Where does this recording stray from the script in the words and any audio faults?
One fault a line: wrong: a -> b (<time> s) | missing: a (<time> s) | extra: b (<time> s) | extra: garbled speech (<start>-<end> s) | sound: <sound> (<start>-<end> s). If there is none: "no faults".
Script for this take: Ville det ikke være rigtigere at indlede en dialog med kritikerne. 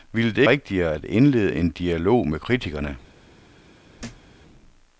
missing: ikke være (0.4 s)
sound: thud (4.0-4.3 s)